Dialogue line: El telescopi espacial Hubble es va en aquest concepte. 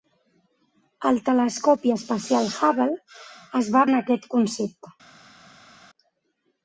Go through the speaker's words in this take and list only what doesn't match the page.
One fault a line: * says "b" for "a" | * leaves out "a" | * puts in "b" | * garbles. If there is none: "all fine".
all fine